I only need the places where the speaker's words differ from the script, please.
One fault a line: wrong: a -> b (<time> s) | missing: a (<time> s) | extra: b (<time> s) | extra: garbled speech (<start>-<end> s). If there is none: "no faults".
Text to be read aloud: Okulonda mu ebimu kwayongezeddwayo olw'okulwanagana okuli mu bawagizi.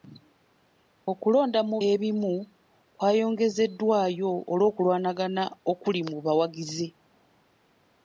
no faults